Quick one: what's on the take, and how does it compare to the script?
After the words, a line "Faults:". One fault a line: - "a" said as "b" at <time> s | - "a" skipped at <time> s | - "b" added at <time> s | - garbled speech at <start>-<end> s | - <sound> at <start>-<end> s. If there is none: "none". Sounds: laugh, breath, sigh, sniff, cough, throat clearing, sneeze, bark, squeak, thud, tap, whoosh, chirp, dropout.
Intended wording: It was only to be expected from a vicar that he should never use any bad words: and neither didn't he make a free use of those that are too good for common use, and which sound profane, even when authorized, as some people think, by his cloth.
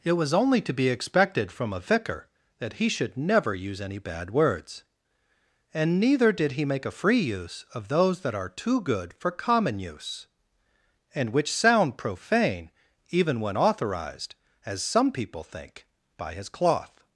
It was only to be expected from a vicar that he should never use any bad words: and neither did he make a free use of those that are too good for common use, and which sound profane, even when authorized, as some people think, by his cloth.
Faults:
- "didn't" said as "did" at 6.3 s